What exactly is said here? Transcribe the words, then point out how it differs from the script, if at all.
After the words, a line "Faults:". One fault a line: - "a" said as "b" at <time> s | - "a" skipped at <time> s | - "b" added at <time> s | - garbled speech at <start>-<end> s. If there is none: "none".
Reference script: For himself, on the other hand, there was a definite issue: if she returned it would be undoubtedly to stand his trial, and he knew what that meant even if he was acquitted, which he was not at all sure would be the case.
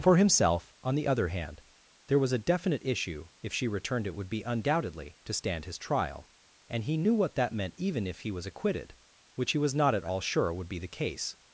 For himself, on the other hand, there was a definite issue: if she returned it would be undoubtedly to stand his trial, and he knew what that meant even if he was acquitted, which he was not at all sure would be the case.
Faults:
none